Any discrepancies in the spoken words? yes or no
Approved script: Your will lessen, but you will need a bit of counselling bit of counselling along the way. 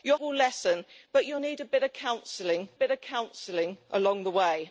no